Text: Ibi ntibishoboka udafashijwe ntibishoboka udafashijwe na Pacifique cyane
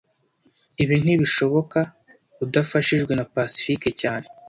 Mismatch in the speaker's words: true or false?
true